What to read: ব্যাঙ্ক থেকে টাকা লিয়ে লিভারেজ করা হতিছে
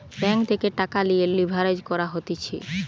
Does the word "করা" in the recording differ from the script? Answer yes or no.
no